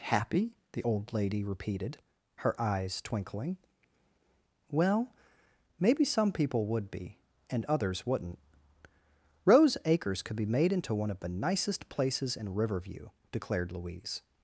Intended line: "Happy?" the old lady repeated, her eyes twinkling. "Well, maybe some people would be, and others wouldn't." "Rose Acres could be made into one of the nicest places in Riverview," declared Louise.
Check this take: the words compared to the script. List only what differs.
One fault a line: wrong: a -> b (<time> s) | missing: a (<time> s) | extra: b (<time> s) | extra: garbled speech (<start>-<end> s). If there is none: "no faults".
no faults